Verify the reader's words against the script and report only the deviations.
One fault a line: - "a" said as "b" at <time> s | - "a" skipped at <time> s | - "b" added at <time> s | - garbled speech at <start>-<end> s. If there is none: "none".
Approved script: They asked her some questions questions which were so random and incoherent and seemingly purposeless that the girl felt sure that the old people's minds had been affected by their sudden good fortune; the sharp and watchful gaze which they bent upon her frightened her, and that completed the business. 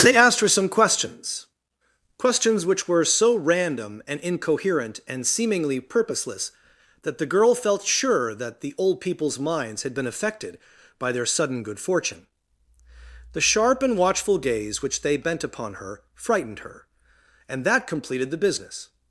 none